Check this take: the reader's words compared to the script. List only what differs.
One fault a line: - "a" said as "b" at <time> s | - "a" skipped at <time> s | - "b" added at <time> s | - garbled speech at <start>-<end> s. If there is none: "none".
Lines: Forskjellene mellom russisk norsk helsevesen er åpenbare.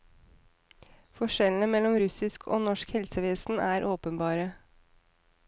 - "og" added at 2.5 s